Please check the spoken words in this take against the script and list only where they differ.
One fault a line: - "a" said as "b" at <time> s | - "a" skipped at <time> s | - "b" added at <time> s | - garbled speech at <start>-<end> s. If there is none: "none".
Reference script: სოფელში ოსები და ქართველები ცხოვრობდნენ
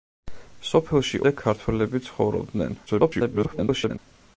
- "ოსები" skipped at 1.2 s
- garbled speech at 2.9-4.0 s